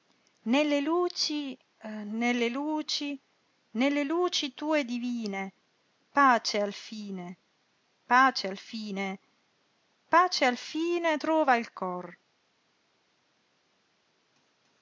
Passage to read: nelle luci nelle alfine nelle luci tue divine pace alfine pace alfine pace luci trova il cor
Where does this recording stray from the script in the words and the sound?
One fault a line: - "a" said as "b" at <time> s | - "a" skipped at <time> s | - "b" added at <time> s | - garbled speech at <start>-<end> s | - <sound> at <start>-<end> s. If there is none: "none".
- "alfine" said as "luci" at 2.5 s
- "luci" said as "alfine" at 10.4 s